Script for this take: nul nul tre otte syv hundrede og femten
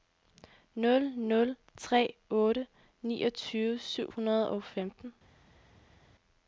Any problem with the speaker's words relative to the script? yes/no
yes